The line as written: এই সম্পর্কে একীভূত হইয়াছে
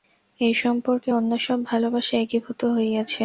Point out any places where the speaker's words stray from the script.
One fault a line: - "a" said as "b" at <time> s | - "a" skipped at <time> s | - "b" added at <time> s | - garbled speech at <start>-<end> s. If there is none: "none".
- "অন্য সব ভালবাসা" added at 1.1 s